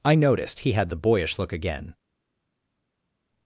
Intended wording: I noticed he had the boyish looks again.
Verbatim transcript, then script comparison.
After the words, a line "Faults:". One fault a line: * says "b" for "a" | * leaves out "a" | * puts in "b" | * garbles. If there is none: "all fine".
I noticed he had the boyish look again.
Faults:
* says "look" for "looks"